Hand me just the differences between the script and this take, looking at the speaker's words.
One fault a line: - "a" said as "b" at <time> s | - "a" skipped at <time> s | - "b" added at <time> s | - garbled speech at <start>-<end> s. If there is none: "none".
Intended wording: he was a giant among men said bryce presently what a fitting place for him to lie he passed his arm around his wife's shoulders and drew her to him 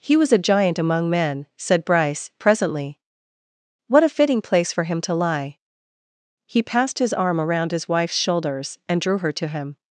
none